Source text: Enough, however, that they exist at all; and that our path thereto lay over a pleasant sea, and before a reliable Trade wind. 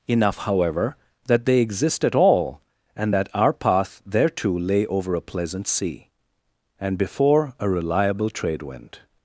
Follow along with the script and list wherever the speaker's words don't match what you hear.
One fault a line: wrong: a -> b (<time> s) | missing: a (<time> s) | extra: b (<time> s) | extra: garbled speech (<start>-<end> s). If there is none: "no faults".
no faults